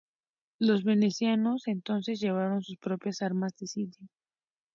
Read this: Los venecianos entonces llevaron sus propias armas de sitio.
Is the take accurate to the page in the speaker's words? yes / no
yes